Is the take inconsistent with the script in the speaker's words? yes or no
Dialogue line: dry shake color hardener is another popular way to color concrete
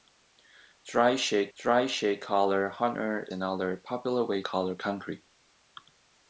yes